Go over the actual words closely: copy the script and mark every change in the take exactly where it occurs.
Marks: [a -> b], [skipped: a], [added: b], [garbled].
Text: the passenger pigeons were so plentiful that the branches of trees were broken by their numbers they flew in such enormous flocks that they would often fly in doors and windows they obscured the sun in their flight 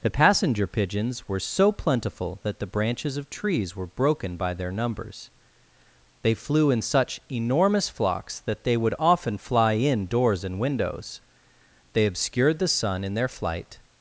the passenger pigeons were so plentiful that the branches of trees were broken by their numbers they flew in such enormous flocks that they would often fly in doors and windows they obscured the sun in their flight